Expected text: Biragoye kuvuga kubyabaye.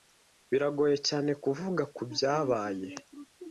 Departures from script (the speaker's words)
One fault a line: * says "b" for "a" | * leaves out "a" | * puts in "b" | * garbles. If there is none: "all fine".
* puts in "cyane"